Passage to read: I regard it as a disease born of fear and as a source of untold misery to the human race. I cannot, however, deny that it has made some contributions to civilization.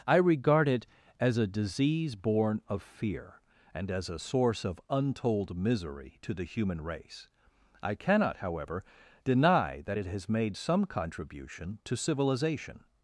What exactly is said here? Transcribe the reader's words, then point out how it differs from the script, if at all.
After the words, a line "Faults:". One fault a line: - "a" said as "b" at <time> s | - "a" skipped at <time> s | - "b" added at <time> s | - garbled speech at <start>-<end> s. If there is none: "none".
I regard it as a disease born of fear and as a source of untold misery to the human race. I cannot, however, deny that it has made some contribution to civilization.
Faults:
- "contributions" said as "contribution" at 10.8 s